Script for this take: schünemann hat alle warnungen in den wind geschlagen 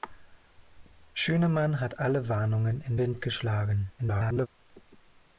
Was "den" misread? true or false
true